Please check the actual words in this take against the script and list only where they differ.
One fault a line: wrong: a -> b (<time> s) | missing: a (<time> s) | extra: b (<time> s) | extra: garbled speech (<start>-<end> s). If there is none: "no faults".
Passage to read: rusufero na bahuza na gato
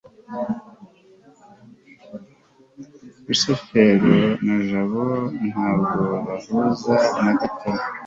extra: jabo ntabwo (4.7 s)